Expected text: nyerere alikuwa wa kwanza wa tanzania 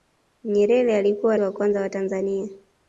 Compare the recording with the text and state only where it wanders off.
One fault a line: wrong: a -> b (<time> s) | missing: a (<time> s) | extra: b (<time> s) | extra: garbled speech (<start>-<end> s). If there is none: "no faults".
no faults